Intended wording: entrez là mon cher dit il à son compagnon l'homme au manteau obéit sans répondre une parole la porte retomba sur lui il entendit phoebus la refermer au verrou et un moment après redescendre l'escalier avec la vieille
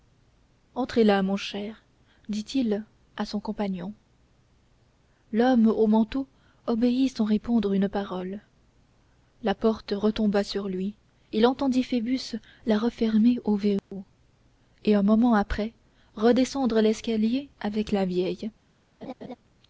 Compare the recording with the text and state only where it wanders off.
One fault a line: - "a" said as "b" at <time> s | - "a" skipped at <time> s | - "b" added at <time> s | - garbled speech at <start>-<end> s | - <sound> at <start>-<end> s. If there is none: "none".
- dropout at 13.8-13.9 s
- laugh at 19.0-19.4 s